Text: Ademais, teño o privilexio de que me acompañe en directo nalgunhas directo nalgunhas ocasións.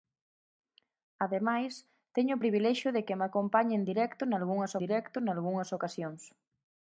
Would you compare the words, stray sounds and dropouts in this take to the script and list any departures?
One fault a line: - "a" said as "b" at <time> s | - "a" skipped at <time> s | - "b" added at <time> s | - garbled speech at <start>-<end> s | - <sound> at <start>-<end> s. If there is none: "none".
none